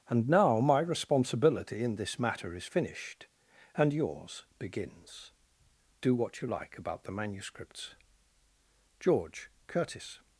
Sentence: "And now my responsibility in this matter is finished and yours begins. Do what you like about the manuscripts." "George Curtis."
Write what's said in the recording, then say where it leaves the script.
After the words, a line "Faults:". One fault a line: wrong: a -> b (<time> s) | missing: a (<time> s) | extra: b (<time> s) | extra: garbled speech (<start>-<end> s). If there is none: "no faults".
"And now my responsibility in this matter is finished and yours begins. Do what you like about the manuscripts." "George Curtis."
Faults:
no faults